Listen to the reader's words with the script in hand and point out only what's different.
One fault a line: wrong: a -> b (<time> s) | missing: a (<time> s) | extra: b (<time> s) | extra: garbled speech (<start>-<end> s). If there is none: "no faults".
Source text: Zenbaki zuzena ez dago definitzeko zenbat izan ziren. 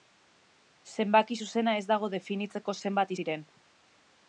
missing: izan (3.1 s)